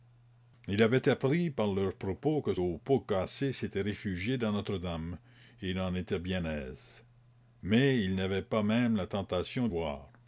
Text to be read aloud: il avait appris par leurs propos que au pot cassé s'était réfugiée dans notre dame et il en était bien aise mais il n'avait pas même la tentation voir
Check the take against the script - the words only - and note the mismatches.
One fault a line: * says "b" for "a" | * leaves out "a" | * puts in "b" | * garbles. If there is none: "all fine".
all fine